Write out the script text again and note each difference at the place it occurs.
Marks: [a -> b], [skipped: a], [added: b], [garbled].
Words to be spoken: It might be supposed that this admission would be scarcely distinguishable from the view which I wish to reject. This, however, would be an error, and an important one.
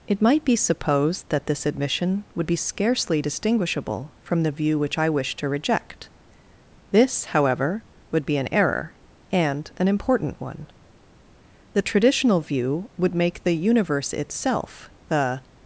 It might be supposed that this admission would be scarcely distinguishable from the view which I wish to reject. This, however, would be an error, and an important one. [added: The traditional view would make the universe itself the]